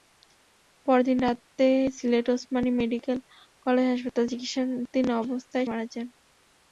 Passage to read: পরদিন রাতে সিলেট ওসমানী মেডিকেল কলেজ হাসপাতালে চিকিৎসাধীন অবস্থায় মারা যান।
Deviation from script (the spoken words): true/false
false